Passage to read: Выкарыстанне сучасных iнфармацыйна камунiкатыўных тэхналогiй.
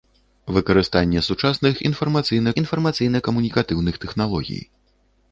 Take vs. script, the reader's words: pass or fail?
fail